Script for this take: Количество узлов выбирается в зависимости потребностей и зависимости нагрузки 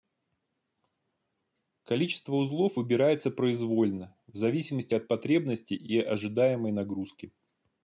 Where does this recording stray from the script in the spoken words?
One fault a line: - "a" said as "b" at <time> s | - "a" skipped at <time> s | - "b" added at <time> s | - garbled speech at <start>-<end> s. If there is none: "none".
- "произвольно" added at 3.3 s
- "от" added at 4.9 s
- "зависимости" said as "ожидаемой" at 6.0 s